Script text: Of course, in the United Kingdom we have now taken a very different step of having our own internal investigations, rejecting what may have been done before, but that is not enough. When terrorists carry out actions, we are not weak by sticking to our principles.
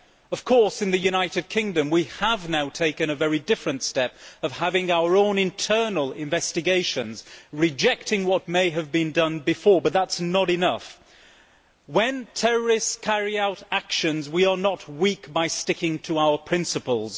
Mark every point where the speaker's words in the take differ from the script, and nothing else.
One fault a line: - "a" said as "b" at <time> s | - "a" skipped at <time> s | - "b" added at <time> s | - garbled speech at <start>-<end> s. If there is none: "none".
none